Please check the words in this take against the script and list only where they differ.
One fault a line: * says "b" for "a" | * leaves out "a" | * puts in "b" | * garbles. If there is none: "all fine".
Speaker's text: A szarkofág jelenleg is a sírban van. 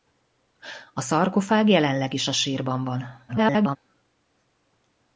* garbles